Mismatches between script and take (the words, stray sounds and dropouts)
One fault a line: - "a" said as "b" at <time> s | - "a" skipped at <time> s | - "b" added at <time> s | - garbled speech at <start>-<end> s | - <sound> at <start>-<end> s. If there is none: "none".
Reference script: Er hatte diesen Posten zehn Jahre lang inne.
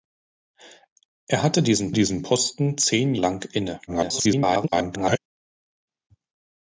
- "diesen" added at 1.9 s
- "Jahre" skipped at 3.2 s
- garbled speech at 3.9-5.2 s